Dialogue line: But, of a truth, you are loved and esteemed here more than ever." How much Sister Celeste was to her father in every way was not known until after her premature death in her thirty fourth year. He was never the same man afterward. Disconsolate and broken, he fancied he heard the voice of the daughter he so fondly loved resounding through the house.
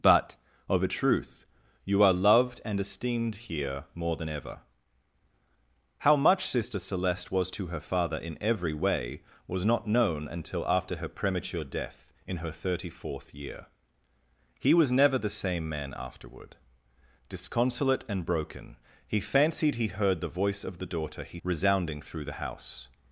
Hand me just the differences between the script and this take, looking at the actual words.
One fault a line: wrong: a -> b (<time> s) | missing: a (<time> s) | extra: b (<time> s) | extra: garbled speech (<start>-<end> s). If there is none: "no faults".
missing: so fondly loved (21.4 s)